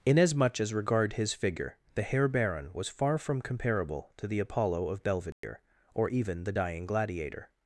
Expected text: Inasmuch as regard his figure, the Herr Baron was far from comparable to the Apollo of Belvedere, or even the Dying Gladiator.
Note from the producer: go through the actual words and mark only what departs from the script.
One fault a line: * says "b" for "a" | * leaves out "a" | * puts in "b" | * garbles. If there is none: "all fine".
all fine